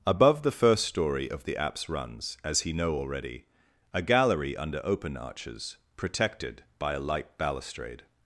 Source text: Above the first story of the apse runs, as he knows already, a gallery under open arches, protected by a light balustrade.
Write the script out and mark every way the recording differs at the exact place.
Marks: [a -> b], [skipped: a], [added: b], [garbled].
Above the first story of the apse runs, as he [knows -> know] already, a gallery under open arches, protected by a light balustrade.